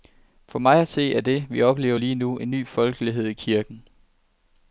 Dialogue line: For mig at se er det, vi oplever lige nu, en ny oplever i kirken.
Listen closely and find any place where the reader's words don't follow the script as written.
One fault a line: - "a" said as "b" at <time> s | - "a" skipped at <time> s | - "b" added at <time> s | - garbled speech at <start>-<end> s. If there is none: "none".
- "oplever" said as "folkelighed" at 2.7 s